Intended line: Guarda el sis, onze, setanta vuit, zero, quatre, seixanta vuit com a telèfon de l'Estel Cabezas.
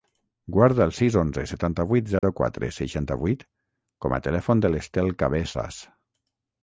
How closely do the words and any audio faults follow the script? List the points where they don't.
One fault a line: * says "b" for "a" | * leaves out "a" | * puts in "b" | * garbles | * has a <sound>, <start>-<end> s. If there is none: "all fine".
* has a dropout, 2.2-2.2 s